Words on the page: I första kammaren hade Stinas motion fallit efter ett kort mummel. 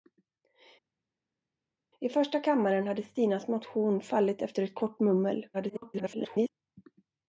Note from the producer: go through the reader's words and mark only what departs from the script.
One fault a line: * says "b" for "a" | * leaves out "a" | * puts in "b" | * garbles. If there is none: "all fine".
* garbles